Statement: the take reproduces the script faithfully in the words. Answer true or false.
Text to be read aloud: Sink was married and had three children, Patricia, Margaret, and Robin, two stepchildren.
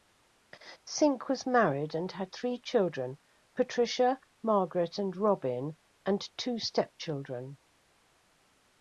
false